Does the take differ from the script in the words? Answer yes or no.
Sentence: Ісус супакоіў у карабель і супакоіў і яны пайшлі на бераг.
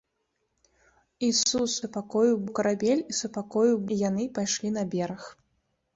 no